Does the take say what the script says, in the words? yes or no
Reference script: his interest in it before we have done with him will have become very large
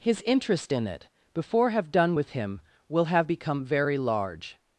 no